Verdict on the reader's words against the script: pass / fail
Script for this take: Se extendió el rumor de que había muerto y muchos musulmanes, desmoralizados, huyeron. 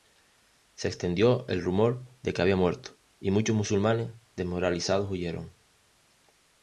pass